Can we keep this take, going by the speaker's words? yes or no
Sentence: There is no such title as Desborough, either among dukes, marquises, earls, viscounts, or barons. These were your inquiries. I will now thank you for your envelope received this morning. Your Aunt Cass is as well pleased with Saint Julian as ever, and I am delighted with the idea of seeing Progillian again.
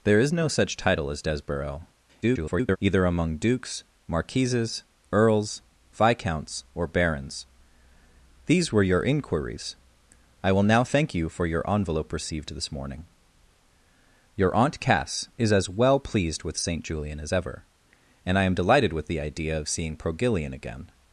no